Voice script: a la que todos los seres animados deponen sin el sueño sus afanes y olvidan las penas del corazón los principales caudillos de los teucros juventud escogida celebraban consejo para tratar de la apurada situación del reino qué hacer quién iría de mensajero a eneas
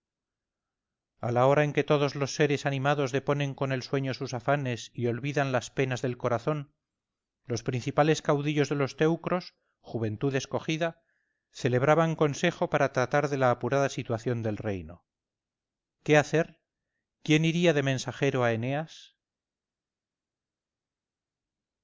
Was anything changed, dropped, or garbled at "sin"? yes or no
yes